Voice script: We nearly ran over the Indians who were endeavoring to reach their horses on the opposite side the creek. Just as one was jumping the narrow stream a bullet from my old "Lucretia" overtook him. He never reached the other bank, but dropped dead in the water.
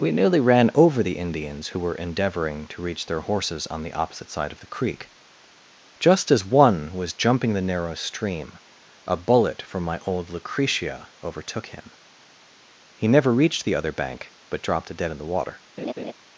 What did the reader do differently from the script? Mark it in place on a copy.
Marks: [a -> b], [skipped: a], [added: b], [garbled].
We nearly ran over the Indians who were endeavoring to reach their horses on the opposite side [added: of] the creek. Just as one was jumping the narrow stream a bullet from my old "Lucretia" overtook him. He never reached the other bank, but dropped dead in the water.